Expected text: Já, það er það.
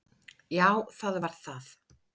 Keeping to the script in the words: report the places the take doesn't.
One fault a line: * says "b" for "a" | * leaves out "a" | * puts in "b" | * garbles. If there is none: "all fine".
* says "var" for "er"